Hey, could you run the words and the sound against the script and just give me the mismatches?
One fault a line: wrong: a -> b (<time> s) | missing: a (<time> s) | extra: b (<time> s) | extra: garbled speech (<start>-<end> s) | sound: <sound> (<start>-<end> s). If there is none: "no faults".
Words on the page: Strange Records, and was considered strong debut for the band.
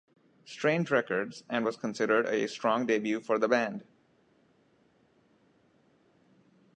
extra: a (2.2 s)